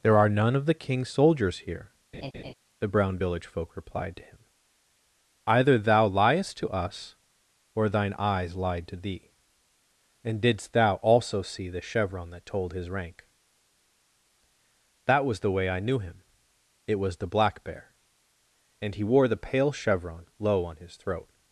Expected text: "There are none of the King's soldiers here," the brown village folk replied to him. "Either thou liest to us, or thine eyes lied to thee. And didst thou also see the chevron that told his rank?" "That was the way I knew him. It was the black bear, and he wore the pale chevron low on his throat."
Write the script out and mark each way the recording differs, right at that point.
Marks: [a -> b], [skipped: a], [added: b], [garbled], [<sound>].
"There are none of the King's soldiers here," [laugh] the brown village folk replied to him. "Either thou liest to us, or thine eyes lied to thee. And didst thou also see the chevron that told his rank?" "That was the way I knew him. It was the black bear, and he wore the pale chevron low on his throat."